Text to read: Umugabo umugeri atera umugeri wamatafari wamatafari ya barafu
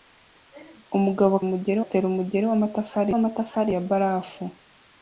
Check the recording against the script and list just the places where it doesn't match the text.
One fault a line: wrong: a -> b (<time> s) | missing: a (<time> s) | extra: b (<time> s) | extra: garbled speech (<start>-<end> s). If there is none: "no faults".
no faults